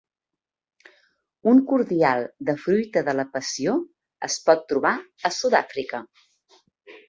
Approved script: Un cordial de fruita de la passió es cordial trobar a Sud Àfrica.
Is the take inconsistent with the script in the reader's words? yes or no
yes